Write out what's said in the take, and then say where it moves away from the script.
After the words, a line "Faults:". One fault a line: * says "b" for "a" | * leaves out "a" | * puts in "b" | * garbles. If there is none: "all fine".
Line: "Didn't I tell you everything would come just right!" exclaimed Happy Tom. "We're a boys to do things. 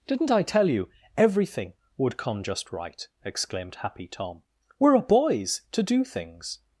"Didn't I tell you everything would come just right!" exclaimed Happy Tom. "We're a boys to do things.
Faults:
all fine